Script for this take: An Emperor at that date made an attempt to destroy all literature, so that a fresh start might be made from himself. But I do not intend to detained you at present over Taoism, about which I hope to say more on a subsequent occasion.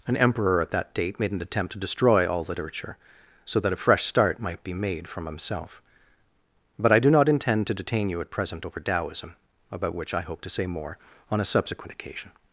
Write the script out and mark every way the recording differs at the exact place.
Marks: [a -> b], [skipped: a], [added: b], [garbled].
An Emperor at that date made an attempt to destroy all literature, so that a fresh start might be made from himself. But I do not intend to [detained -> detain] you at present over Taoism, about which I hope to say more on a subsequent occasion.